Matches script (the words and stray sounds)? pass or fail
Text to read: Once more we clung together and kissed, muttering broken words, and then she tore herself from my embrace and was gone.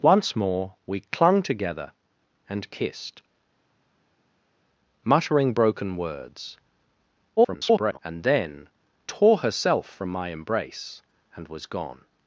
fail